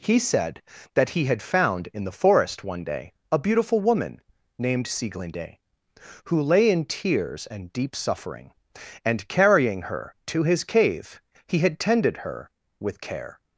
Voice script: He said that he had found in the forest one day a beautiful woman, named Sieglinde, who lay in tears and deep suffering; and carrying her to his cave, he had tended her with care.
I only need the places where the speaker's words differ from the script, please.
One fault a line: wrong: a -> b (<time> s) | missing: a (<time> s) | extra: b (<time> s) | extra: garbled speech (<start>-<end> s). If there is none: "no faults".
no faults